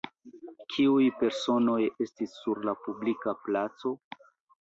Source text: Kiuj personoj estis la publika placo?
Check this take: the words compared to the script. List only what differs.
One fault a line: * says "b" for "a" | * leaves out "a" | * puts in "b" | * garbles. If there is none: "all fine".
* puts in "sur"